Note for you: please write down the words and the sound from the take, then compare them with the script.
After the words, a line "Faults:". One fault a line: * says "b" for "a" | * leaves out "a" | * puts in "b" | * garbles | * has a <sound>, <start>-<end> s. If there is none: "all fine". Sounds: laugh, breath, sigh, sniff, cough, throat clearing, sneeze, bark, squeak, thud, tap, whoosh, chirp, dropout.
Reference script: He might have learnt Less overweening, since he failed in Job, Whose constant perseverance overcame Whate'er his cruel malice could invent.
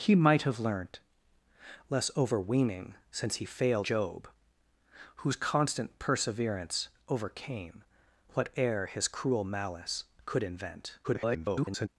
He might have learnt Less overweening, since he failed Job, Whose constant perseverance overcame Whate'er his cruel malice could invent. [garbled]
Faults:
* leaves out "in"
* garbles